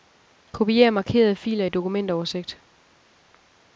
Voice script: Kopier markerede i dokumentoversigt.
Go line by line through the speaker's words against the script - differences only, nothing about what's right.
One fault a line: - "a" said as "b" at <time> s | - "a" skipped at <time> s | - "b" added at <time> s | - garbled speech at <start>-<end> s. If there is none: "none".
- "filer" added at 1.4 s